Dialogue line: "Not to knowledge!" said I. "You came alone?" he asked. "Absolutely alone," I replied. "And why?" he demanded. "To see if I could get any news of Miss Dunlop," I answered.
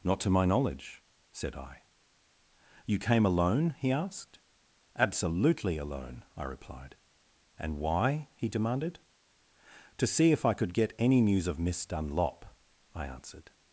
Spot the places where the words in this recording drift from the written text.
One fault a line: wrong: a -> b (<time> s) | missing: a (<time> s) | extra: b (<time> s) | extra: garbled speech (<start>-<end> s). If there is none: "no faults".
extra: my (0.3 s)